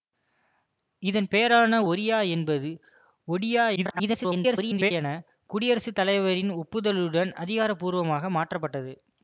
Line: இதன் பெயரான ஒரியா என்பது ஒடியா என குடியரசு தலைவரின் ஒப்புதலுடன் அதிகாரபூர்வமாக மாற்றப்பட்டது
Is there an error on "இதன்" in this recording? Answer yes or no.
no